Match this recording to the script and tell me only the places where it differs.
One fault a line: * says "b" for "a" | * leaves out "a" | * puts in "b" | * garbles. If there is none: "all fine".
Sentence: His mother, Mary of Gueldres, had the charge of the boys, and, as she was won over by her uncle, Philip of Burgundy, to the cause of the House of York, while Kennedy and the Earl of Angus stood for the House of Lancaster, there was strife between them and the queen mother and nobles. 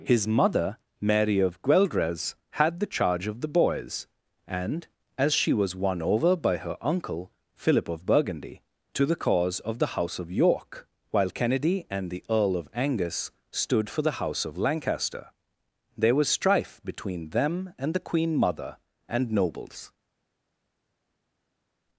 all fine